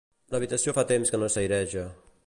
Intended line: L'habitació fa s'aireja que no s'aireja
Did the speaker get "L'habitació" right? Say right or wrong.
right